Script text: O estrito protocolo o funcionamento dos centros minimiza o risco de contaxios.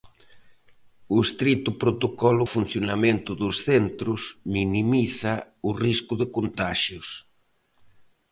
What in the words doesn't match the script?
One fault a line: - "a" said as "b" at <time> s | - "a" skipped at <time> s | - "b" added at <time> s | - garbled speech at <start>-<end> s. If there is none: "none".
none